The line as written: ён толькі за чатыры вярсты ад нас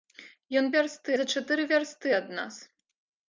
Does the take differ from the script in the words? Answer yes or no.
yes